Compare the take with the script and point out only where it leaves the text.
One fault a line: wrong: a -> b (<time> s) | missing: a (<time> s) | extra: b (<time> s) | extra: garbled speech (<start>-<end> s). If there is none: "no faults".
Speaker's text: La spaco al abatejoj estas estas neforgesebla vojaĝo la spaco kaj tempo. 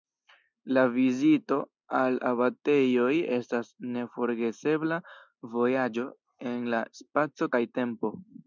wrong: spaco -> vizito (0.9 s)
missing: estas (3.7 s)
extra: en (6.5 s)